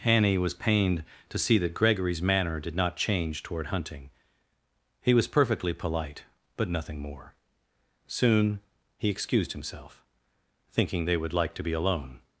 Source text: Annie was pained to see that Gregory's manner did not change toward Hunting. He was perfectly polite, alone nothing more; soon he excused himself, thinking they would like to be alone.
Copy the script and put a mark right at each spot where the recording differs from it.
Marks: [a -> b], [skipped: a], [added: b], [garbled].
Annie was pained to see that Gregory's manner did not change toward Hunting. He was perfectly polite, [alone -> but] nothing more; soon he excused himself, thinking they would like to be alone.